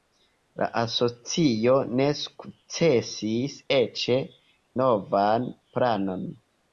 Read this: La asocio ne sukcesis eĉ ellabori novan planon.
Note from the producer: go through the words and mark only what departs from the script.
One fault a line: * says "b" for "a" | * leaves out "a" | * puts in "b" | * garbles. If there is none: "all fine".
* leaves out "ellabori"